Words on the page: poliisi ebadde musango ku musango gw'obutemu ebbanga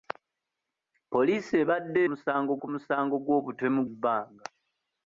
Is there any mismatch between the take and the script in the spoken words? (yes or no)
no